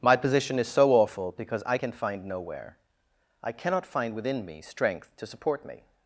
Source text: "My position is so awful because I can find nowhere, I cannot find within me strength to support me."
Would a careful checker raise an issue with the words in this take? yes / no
no